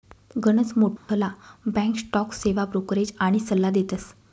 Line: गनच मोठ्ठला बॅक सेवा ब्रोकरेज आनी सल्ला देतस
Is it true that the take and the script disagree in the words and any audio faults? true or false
true